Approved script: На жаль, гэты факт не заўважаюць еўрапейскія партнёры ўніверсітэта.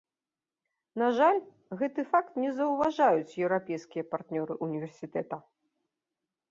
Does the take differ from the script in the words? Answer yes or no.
no